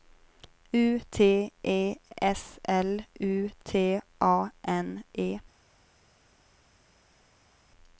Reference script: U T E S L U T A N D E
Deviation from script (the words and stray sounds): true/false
true